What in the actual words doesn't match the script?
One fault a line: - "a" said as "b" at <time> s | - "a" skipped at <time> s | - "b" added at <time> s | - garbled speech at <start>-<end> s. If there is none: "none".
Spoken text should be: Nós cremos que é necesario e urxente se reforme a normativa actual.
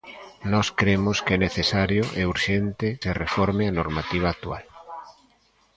none